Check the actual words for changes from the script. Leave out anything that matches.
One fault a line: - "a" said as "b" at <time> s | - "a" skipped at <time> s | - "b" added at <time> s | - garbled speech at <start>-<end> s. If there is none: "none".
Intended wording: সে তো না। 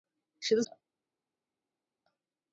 none